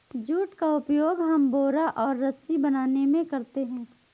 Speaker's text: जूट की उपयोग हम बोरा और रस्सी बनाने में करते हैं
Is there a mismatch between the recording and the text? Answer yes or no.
yes